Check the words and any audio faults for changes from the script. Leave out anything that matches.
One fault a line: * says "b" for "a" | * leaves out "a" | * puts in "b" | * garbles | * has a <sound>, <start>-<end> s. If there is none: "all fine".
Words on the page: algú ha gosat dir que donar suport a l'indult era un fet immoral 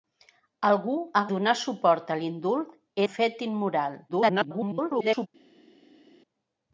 * leaves out "gosat dir que"
* leaves out "era"
* garbles